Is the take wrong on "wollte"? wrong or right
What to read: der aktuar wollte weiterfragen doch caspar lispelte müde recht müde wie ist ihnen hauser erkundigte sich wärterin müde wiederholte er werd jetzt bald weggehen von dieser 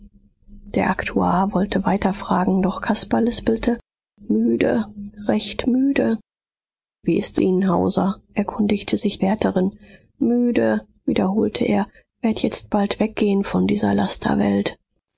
right